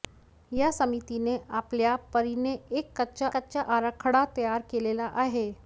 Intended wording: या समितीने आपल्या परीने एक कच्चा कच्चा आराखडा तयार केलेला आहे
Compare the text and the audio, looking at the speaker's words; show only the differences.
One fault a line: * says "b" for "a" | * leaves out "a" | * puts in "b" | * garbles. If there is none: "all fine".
all fine